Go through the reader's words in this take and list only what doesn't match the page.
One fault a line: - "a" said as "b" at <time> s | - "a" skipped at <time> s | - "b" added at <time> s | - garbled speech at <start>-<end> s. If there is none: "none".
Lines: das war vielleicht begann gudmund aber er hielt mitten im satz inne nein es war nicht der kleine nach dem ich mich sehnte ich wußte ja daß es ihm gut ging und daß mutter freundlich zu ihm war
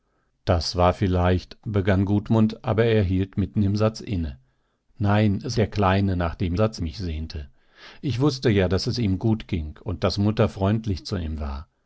- "war nicht" skipped at 5.6 s
- "ich" said as "satz" at 6.5 s